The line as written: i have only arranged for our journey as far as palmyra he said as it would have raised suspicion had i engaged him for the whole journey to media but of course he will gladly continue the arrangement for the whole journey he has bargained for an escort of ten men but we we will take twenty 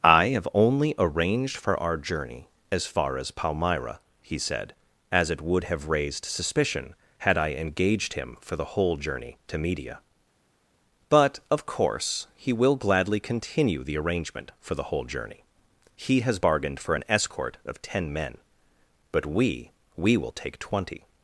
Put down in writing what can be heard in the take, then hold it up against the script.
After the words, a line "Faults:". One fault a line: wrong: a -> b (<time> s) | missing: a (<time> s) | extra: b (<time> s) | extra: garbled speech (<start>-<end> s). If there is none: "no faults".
i have only arranged for our journey as far as palmyra he said as it would have raised suspicion had i engaged him for the whole journey to media but of course he will gladly continue the arrangement for the whole journey he has bargained for an escort of ten men but we we will take twenty
Faults:
no faults